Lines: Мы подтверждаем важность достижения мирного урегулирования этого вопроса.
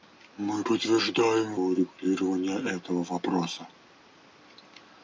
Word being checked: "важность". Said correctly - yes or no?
no